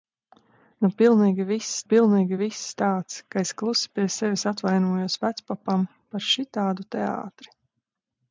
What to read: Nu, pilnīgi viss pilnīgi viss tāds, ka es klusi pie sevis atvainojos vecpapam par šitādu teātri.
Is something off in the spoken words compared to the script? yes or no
no